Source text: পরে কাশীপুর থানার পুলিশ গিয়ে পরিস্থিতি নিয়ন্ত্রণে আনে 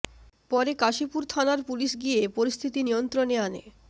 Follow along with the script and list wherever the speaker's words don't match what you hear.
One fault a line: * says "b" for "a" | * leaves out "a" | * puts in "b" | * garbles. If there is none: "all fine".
all fine